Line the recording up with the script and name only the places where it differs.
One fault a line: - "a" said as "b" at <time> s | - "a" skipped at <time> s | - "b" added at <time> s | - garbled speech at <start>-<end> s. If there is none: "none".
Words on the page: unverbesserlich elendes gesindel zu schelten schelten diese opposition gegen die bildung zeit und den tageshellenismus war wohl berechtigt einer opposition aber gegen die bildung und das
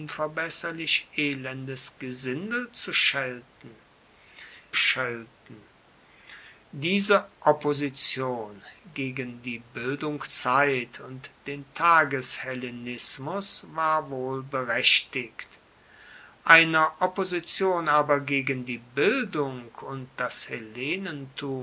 none